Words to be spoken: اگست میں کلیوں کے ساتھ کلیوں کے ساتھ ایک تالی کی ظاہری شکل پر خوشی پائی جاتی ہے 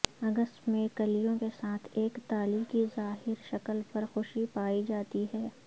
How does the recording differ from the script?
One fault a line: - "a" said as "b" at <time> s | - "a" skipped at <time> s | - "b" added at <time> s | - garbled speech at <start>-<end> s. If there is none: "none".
- "کلیوں کے ساتھ" skipped at 1.9 s